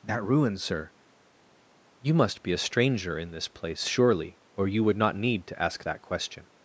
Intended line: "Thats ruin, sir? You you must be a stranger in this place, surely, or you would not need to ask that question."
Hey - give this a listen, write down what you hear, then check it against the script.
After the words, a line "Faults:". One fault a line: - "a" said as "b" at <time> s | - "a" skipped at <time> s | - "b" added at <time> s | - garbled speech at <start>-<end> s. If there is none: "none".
"That ruin, sir? You must be a stranger in this place, surely, or you would not need to ask that question."
Faults:
- "Thats" said as "That" at 0.0 s
- "you" skipped at 2.1 s